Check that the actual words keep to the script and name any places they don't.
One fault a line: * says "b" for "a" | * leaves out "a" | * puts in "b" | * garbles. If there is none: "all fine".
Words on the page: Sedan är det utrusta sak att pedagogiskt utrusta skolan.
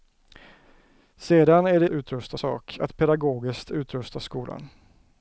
all fine